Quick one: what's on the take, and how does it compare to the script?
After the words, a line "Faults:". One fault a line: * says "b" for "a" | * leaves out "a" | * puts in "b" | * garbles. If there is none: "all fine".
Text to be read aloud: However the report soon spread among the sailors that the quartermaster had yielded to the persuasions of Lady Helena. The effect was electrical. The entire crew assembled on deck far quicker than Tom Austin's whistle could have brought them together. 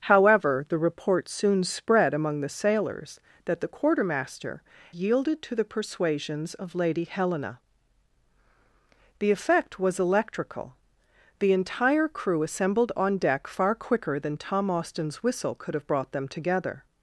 However the report soon spread among the sailors that the quartermaster yielded to the persuasions of Lady Helena. The effect was electrical. The entire crew assembled on deck far quicker than Tom Austin's whistle could have brought them together.
Faults:
* leaves out "had"